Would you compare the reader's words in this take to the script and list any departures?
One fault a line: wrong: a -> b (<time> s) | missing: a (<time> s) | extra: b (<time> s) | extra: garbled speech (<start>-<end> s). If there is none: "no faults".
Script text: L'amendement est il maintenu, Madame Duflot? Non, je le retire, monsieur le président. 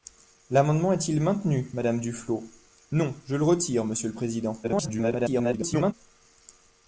extra: garbled speech (4.6-5.9 s)